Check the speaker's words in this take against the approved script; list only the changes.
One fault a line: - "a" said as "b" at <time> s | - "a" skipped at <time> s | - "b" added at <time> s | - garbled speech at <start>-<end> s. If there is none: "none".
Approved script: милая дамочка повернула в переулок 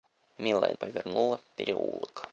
- "дамочка" skipped at 0.7 s